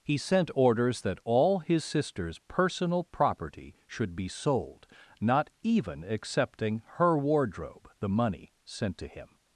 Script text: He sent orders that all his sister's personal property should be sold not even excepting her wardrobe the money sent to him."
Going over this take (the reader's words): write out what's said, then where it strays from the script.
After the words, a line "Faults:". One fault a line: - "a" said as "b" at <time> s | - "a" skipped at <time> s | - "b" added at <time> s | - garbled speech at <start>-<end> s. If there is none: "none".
He sent orders that all his sister's personal property should be sold not even excepting her wardrobe the money sent to him."
Faults:
none